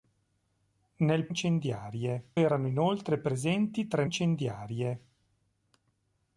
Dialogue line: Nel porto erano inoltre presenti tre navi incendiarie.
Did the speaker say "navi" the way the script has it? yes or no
no